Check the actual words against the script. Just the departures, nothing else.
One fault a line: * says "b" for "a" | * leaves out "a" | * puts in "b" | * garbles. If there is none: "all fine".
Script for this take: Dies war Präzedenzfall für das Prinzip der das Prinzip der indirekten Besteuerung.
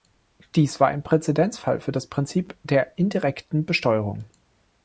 * puts in "ein"
* leaves out "das Prinzip der"